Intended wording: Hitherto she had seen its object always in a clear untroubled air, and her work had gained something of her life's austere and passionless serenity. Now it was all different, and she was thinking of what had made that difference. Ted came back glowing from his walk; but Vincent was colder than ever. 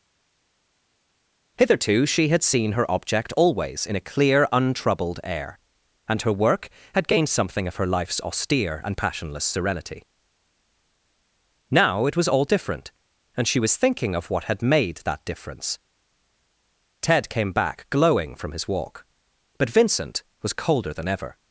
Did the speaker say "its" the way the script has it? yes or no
no